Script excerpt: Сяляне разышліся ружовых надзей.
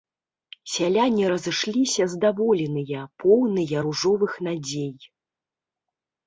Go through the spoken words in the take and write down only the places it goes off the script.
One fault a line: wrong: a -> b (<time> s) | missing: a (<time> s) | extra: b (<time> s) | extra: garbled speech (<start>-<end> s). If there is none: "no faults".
extra: здаволеныя поўныя (2.1 s)